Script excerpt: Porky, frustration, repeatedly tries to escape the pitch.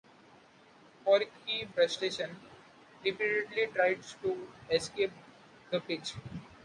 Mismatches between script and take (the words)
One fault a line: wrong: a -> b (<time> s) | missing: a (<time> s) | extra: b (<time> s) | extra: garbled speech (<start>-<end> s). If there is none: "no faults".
no faults